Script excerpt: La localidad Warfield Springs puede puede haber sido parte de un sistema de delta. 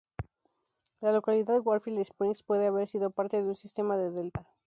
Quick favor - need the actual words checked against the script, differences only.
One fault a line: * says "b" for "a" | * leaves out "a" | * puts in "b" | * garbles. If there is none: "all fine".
* leaves out "puede"